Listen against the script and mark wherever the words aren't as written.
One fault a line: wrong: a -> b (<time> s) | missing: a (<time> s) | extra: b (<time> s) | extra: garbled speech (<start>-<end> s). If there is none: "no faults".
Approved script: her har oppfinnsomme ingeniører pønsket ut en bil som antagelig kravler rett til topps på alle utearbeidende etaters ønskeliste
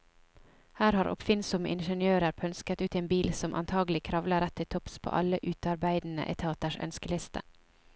no faults